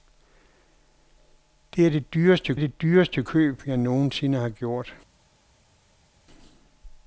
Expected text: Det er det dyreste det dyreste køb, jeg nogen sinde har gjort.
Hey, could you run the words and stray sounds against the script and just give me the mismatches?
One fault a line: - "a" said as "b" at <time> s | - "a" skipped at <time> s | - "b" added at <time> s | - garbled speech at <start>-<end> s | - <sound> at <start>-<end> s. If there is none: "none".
none